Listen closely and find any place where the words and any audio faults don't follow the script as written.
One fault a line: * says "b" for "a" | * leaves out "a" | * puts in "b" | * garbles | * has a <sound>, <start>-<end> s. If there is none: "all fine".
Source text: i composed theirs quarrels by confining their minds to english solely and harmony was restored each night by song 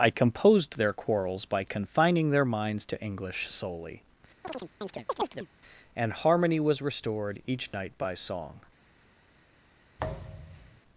* says "their" for "theirs"
* has a chirp, 4.4-5.5 s
* has a thud, 10.0-10.8 s